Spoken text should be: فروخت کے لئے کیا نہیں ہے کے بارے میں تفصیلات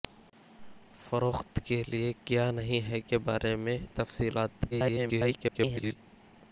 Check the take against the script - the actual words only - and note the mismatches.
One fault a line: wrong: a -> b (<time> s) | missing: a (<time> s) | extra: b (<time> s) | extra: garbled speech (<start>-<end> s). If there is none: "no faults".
extra: garbled speech (4.7-6.0 s)